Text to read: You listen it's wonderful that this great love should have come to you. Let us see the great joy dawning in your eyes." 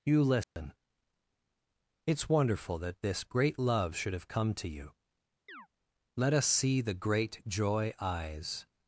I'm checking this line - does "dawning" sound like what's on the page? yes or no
no